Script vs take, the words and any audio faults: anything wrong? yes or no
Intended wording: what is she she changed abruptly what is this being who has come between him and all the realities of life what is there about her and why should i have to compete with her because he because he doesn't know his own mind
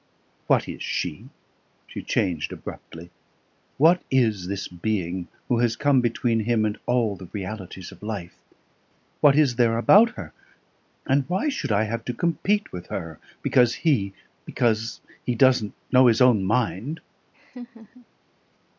yes